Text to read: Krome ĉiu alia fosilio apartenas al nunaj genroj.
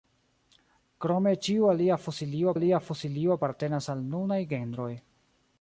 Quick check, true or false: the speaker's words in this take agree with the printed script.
false